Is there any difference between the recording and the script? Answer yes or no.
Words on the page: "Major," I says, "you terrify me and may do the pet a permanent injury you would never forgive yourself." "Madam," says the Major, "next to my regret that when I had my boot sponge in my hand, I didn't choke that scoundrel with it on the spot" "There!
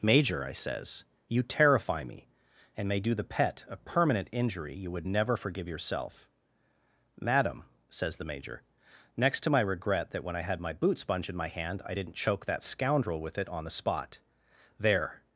no